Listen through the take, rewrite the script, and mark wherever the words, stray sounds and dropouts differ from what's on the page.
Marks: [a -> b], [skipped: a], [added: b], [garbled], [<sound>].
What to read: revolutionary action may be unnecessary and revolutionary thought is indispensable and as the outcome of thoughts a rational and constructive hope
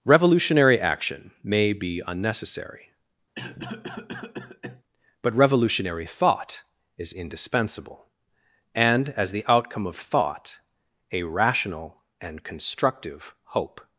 revolutionary action may be unnecessary [cough] [and -> but] revolutionary thought is indispensable and as the outcome of [thoughts -> thought] a rational and constructive hope